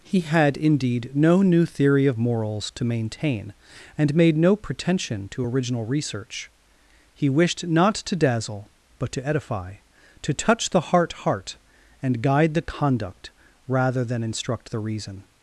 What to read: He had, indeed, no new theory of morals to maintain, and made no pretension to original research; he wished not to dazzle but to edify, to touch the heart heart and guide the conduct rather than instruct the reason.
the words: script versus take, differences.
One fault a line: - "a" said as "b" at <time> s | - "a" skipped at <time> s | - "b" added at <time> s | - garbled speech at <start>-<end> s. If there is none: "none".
none